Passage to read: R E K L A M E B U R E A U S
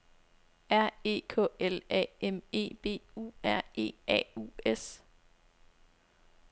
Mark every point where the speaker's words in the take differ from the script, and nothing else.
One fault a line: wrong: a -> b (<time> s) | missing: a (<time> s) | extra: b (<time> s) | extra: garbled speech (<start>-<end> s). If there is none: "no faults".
no faults